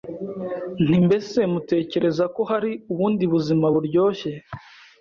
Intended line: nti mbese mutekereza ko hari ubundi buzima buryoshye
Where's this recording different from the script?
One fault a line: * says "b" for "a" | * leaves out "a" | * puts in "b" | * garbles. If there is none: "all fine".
all fine